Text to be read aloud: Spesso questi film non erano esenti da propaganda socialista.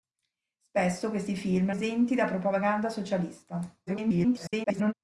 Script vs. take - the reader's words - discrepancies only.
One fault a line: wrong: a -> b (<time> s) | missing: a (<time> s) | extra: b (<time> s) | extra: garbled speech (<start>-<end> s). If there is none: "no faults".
missing: non erano (1.7 s)
extra: garbled speech (3.9-4.9 s)